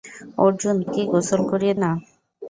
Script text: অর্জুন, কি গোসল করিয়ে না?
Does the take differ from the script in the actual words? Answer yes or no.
no